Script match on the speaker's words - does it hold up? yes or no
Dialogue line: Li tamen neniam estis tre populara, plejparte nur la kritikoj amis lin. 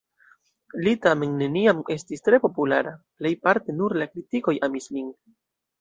yes